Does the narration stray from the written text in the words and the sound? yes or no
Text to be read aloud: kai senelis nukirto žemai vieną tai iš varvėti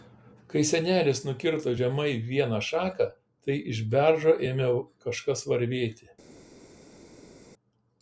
yes